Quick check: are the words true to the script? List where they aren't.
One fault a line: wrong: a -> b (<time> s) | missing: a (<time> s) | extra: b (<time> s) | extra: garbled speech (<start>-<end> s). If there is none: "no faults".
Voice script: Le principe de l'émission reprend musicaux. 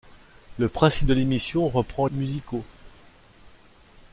no faults